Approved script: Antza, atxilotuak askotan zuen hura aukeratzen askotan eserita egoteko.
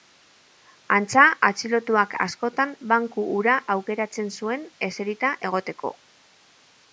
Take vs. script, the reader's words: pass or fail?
fail